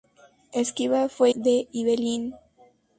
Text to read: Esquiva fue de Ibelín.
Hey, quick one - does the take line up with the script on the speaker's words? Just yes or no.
yes